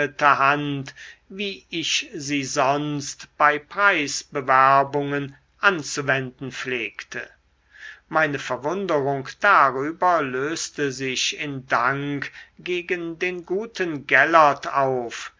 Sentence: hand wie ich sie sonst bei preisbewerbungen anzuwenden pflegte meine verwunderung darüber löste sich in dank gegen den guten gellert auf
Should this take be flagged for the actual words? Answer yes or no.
no